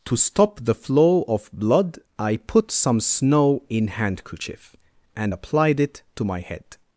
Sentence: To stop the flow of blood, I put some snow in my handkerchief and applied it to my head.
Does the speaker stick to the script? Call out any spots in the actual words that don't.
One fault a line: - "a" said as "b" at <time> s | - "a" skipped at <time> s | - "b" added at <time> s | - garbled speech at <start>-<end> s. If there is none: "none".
- "my" skipped at 3.9 s